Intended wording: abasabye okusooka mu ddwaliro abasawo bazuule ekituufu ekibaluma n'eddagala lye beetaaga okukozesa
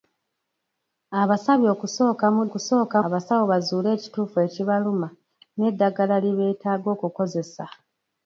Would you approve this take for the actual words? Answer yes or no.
no